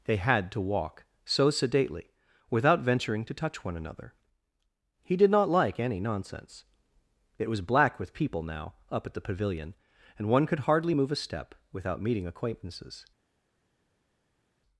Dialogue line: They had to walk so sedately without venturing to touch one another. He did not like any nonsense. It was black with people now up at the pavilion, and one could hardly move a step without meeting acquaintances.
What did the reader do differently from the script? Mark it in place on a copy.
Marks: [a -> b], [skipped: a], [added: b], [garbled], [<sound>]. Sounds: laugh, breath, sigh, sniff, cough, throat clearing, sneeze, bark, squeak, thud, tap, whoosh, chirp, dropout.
They had to walk so sedately without venturing to touch one another. He did not like any nonsense. It was black with people now up at the pavilion, and one could hardly move a step without meeting acquaintances.